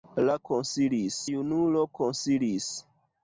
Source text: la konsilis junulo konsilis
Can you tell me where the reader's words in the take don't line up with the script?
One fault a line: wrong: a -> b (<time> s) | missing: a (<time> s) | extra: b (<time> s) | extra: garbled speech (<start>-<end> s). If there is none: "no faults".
no faults